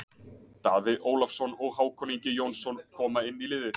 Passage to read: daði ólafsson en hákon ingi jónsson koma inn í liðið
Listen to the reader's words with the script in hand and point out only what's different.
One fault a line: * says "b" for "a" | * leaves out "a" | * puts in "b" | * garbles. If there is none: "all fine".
* says "og" for "en"